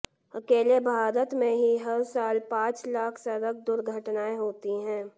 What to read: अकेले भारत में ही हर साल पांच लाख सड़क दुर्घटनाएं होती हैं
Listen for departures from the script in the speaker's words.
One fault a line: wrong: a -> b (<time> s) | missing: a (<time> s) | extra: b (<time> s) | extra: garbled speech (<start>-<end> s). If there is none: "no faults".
no faults